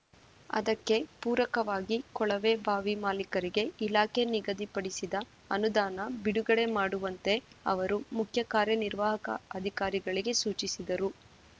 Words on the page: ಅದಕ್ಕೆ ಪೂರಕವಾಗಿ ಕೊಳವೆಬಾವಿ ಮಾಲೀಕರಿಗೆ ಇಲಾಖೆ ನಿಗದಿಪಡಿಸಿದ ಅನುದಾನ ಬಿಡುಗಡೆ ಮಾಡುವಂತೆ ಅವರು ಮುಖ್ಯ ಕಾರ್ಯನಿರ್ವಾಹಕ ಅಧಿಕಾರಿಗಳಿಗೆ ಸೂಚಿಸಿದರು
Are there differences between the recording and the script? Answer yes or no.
no